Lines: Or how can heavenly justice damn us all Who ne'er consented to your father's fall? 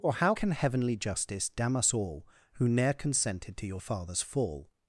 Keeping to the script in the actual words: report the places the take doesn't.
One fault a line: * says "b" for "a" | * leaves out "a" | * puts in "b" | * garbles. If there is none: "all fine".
all fine